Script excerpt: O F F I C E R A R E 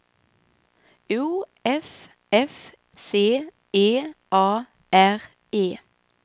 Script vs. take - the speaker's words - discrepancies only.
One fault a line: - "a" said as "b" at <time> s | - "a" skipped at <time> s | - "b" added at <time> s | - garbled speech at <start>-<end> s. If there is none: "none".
- "I" skipped at 2.7 s
- "R" skipped at 4.1 s